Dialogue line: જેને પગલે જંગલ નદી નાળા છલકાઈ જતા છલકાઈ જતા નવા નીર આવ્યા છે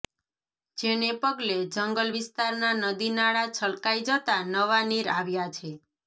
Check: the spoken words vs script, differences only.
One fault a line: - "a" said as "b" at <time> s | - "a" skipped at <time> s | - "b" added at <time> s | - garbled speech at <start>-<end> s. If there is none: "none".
- "વિસ્તારના" added at 2.1 s
- "છલકાઈ જતા" skipped at 4.4 s